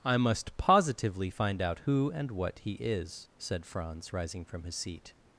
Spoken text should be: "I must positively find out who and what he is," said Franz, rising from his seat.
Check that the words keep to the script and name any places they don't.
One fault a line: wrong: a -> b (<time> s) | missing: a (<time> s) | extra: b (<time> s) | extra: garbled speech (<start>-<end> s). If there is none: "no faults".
no faults